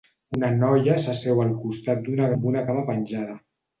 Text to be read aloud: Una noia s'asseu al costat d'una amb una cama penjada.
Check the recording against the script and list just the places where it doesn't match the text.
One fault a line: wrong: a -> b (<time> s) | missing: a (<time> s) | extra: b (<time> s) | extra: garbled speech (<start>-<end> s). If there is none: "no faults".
no faults